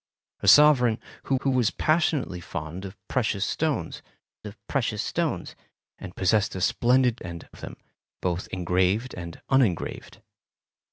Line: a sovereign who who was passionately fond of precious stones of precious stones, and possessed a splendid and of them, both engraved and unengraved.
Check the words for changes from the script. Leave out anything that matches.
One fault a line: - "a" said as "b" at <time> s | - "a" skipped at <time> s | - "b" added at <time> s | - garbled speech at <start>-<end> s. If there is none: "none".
none